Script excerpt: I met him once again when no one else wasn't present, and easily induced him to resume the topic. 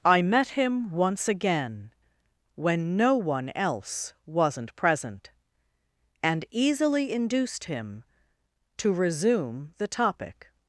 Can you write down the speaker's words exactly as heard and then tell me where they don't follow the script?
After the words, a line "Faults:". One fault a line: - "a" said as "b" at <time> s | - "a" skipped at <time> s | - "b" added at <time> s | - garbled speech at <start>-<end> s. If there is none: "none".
I met him once again when no one else wasn't present, and easily induced him to resume the topic.
Faults:
none